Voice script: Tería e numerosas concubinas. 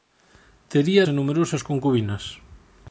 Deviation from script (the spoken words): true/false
false